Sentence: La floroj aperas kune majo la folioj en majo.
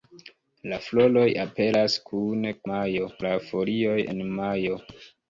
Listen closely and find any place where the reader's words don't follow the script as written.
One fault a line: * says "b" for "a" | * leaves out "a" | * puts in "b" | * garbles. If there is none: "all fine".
all fine